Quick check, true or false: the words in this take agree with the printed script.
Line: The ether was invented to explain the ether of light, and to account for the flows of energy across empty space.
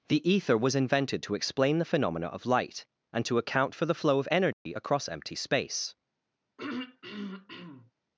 false